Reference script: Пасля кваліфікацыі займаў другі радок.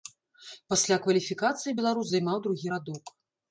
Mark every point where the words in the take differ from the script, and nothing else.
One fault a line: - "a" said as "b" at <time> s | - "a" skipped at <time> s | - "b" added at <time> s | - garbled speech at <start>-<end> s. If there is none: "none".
- "беларус" added at 1.8 s